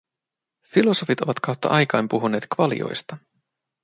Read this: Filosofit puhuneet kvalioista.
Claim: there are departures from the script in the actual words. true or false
true